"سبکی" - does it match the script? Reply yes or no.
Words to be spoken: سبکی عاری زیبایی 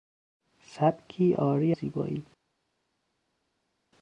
yes